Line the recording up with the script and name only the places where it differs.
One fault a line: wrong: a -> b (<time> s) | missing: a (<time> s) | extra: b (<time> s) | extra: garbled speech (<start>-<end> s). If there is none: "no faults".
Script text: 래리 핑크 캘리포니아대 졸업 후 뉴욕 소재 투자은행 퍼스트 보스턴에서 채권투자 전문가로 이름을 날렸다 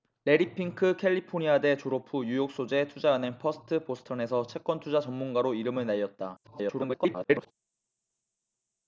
extra: garbled speech (6.4-7.5 s)